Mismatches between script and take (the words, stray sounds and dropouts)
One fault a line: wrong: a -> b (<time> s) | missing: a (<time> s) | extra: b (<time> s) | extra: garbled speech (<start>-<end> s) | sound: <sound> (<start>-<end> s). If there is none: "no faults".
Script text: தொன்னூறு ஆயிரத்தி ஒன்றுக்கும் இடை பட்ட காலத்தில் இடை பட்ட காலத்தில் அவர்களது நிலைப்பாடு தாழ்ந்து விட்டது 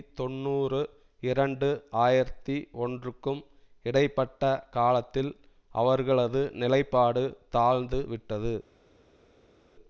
extra: இரண்டு (1.2 s)
missing: இடை பட்ட காலத்தில் (5.3 s)